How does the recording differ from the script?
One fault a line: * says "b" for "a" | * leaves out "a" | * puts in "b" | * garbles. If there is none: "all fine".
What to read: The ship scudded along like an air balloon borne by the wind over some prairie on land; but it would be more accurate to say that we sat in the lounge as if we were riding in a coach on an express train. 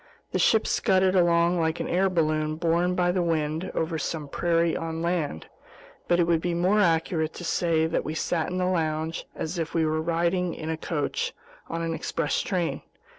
all fine